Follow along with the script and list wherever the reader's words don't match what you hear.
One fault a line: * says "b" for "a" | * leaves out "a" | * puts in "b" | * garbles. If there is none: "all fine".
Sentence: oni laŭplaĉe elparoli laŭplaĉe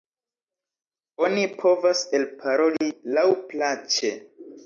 * says "povas" for "laŭplaĉe"